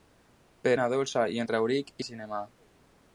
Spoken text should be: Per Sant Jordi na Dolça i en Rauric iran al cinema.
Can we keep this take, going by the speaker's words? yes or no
no